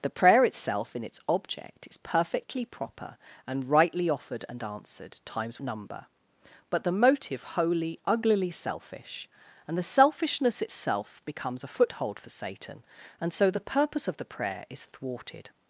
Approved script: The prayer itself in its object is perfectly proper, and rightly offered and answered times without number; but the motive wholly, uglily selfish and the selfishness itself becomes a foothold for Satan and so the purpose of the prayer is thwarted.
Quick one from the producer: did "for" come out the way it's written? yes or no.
yes